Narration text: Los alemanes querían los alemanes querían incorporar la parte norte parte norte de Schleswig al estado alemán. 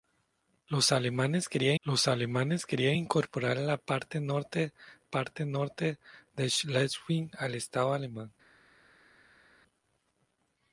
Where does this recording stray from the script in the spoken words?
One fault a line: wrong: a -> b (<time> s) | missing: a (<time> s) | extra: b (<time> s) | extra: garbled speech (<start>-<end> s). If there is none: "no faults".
no faults